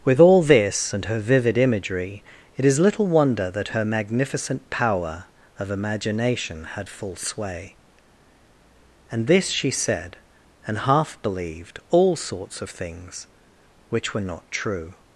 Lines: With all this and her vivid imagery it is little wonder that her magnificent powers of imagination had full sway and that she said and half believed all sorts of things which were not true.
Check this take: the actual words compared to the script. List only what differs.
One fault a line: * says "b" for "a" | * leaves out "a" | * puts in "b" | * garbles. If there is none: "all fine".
* says "power" for "powers"
* says "this" for "that"